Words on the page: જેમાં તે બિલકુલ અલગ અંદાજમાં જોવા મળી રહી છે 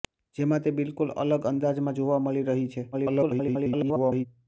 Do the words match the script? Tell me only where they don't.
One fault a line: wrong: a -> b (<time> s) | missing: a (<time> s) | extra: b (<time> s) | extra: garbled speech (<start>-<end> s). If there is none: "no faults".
extra: garbled speech (2.9-4.3 s)